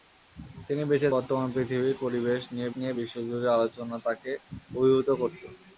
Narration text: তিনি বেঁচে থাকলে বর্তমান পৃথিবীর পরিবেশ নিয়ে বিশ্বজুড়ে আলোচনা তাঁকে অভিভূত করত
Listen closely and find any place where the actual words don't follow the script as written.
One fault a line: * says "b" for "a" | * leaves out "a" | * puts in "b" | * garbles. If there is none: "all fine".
* leaves out "থাকলে"
* puts in "নিয়ে"